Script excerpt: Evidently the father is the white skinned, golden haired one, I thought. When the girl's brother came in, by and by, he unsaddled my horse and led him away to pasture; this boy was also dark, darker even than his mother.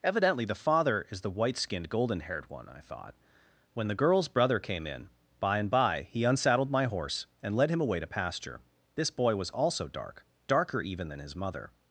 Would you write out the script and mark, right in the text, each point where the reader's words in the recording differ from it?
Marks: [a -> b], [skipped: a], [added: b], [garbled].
Evidently the father is the white skinned, golden haired one, I thought. When the girl's brother came in, by and by, he unsaddled my horse and led him away to pasture; this boy was also dark, darker even than his mother.